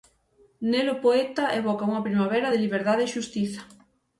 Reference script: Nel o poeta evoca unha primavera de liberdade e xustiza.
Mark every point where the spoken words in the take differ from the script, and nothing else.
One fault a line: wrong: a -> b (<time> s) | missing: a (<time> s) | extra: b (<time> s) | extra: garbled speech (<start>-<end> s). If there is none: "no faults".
no faults